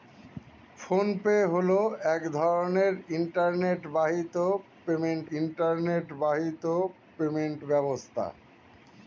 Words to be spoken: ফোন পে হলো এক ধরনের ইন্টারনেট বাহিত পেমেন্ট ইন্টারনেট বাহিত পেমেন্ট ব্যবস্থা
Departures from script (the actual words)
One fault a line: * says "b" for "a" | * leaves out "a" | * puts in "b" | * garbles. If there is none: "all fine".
all fine